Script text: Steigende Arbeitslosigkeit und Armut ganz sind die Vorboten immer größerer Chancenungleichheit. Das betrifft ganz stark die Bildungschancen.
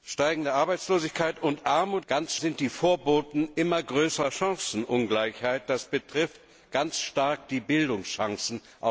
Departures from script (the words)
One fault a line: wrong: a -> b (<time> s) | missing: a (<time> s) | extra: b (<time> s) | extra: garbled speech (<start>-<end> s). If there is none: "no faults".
no faults